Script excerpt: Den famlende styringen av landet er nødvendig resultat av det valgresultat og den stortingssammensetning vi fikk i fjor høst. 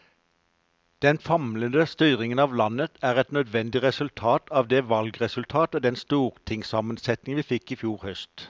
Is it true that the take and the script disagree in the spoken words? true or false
true